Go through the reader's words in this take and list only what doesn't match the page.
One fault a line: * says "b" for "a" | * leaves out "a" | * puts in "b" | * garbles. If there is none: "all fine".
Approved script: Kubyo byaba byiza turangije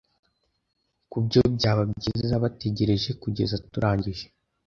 * puts in "bategereje kugeza"